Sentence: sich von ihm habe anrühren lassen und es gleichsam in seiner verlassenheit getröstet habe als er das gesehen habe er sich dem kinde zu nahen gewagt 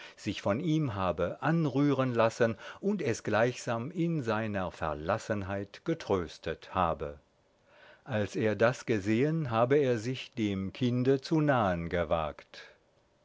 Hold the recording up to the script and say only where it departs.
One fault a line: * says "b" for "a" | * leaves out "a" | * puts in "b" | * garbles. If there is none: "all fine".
all fine